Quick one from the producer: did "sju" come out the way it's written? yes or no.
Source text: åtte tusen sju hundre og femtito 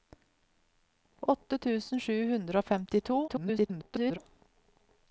yes